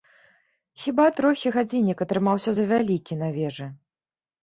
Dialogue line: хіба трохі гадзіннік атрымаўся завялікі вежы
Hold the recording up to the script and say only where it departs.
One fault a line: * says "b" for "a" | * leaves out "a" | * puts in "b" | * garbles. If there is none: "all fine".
* puts in "на"